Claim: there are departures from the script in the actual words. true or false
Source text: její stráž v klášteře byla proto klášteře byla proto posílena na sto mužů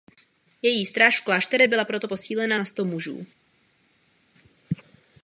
true